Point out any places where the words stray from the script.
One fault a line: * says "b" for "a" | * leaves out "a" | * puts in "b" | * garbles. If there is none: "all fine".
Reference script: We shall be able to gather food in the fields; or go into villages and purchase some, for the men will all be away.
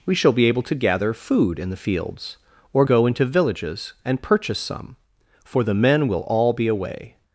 all fine